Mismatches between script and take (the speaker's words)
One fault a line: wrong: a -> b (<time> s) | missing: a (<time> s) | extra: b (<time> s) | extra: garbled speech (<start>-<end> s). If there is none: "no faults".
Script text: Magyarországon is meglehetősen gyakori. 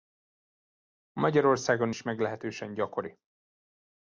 no faults